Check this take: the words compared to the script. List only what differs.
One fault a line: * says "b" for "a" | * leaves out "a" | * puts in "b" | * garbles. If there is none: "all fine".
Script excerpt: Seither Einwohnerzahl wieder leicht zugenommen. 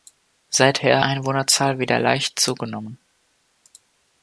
all fine